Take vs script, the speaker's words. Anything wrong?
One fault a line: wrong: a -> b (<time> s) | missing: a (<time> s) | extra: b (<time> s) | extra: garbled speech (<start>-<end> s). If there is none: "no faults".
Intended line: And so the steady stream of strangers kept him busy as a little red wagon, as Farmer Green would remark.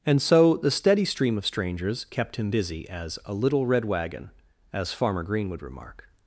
no faults